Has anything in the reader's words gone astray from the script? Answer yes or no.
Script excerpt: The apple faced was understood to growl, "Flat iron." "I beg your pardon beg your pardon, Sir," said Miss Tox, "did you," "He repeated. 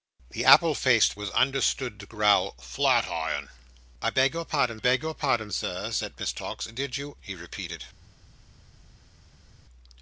no